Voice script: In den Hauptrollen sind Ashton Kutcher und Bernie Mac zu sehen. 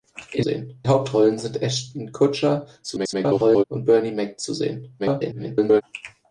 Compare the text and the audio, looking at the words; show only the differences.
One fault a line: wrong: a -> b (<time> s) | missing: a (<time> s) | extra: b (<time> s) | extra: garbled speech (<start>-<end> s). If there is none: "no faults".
wrong: den -> sehen (0.4 s)
extra: garbled speech (2.8-3.6 s)
extra: garbled speech (5.0-5.8 s)